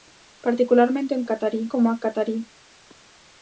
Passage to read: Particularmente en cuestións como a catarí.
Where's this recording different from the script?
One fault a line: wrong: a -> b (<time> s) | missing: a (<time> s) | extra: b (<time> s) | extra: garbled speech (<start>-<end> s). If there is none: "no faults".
wrong: cuestións -> catarí (1.3 s)